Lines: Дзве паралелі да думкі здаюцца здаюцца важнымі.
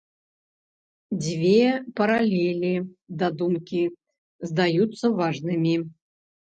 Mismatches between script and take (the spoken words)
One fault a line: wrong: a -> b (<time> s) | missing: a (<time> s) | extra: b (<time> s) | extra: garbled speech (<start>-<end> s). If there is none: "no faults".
missing: здаюцца (5.2 s)